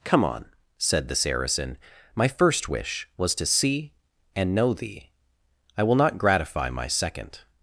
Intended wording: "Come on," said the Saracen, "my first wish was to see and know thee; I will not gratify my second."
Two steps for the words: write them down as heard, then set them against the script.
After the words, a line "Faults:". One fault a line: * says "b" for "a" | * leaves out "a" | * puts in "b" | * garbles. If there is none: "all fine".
"Come on," said the Saracen, "my first wish was to see and know thee; I will not gratify my second."
Faults:
all fine